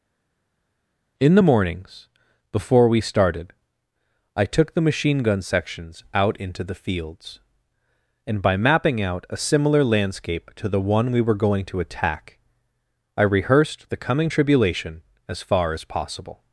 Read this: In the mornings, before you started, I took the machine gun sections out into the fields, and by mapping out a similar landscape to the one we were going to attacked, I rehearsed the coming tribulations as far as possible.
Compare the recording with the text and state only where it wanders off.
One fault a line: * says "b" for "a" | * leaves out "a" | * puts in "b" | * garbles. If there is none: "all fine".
* says "we" for "you"
* says "attack" for "attacked"
* says "tribulation" for "tribulations"